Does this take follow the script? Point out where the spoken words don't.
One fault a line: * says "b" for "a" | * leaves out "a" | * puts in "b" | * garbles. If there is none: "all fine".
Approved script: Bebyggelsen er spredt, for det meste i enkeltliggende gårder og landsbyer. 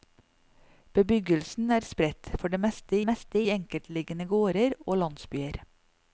* puts in "meste"